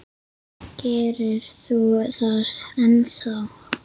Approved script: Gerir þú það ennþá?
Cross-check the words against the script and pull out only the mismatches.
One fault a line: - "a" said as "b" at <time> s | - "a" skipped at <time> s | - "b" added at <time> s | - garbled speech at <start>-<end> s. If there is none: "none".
none